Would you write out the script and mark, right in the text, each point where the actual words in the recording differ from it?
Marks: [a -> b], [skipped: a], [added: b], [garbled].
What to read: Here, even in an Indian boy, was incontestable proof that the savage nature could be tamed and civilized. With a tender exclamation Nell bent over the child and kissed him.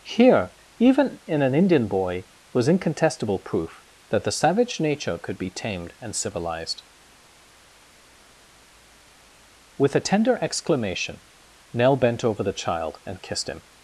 Here, even in an Indian boy, was incontestable proof that the savage nature could be tamed and civilized. With a tender exclamation Nell bent over the child and kissed him.